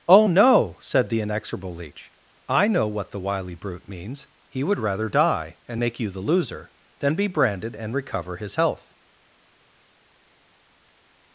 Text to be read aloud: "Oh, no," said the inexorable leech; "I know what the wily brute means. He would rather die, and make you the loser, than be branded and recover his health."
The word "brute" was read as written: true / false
true